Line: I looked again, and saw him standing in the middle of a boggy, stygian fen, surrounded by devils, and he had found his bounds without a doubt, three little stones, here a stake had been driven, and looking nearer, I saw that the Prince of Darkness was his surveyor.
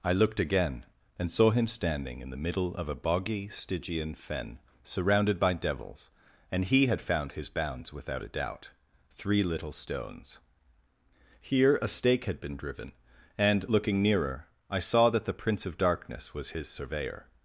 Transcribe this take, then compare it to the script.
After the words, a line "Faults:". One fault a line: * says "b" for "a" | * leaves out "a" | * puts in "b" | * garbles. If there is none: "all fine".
I looked again, and saw him standing in the middle of a boggy, stygian fen, surrounded by devils, and he had found his bounds without a doubt, three little stones, here a stake had been driven, and looking nearer, I saw that the Prince of Darkness was his surveyor.
Faults:
all fine